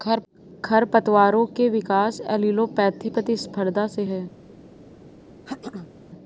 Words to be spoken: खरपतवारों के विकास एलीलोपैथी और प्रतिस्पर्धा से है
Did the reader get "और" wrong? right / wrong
wrong